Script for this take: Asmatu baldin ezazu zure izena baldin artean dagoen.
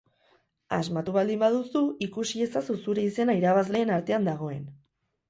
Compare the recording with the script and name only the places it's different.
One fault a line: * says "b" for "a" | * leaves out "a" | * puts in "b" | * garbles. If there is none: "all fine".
* puts in "baduzu ikusi"
* says "irabazleen" for "baldin"